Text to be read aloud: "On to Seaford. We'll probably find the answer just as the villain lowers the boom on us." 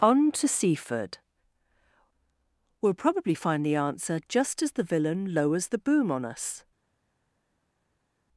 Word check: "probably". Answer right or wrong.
right